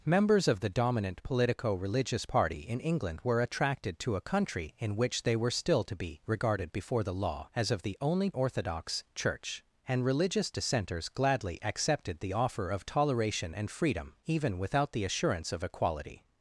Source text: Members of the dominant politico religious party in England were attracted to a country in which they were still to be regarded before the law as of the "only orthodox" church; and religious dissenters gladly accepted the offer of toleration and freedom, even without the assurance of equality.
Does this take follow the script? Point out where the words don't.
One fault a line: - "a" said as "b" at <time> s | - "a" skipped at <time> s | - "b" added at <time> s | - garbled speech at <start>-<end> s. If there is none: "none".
none